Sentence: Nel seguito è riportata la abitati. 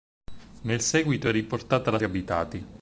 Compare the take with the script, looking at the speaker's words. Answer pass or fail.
pass